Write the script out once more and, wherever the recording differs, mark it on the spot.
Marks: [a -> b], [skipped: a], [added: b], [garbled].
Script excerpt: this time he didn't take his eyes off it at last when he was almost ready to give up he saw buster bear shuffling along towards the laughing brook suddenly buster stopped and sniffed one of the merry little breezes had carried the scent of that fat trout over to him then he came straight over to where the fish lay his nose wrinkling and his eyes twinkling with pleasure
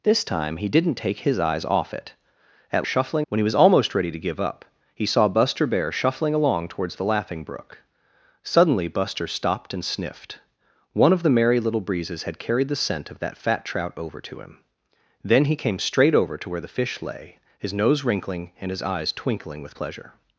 this time he didn't take his eyes off it at [last -> shuffling] when he was almost ready to give up he saw buster bear shuffling along towards the laughing brook suddenly buster stopped and sniffed one of the merry little breezes had carried the scent of that fat trout over to him then he came straight over to where the fish lay his nose wrinkling and his eyes twinkling with pleasure